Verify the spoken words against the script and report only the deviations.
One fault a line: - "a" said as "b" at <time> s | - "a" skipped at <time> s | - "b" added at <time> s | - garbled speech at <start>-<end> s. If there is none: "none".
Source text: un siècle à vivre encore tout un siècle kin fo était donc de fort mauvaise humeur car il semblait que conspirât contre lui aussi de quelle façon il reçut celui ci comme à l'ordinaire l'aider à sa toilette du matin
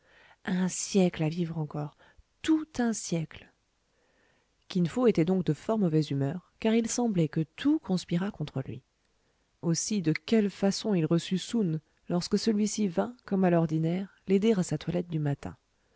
- "tout" added at 7.4 s
- "soun lorsque" added at 11.4 s
- "vint" added at 12.9 s